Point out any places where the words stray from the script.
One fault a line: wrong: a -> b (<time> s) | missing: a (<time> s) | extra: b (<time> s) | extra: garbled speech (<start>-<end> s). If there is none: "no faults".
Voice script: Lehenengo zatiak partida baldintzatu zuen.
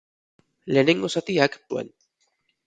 missing: partida baldintzatu (1.6 s)